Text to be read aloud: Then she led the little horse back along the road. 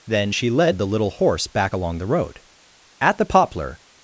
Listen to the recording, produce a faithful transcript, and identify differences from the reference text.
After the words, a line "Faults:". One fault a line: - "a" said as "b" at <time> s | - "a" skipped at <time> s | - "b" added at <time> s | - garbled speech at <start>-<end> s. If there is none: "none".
Then she led the little horse back along the road. At the poplar
Faults:
- "At the poplar" added at 3.0 s